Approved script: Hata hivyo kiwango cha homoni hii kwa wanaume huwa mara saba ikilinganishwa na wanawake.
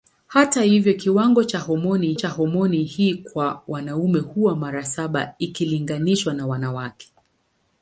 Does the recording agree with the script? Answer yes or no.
no